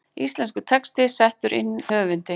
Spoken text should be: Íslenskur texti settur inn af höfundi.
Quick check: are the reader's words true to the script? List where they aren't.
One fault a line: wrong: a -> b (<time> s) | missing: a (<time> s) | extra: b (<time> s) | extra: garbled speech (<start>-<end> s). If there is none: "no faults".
missing: af (1.7 s)